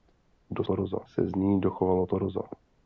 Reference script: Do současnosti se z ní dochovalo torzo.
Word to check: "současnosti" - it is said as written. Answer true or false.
false